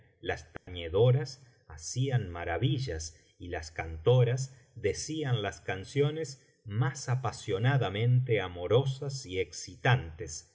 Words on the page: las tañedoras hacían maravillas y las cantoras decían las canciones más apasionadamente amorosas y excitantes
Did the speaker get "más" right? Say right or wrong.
right